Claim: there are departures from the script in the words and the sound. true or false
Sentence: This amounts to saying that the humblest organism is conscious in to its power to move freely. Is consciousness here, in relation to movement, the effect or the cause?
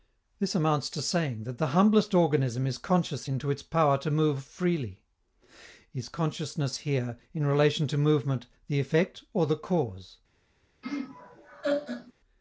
true